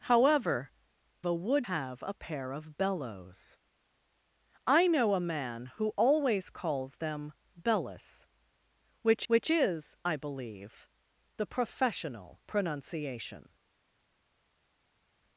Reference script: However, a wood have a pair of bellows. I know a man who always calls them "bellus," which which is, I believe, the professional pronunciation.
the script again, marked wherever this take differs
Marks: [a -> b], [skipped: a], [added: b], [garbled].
However, a wood have a pair of bellows. I know a man who always calls them "bellus," which which is, I believe, the professional pronunciation.